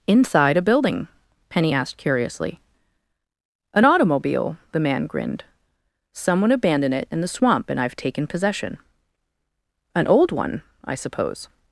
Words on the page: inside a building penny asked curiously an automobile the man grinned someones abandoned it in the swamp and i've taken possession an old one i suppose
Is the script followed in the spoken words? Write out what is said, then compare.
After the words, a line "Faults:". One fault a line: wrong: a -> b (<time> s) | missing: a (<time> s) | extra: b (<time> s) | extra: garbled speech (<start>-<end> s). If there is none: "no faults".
inside a building penny asked curiously an automobile the man grinned someone abandoned it in the swamp and i've taken possession an old one i suppose
Faults:
wrong: someones -> someone (6.1 s)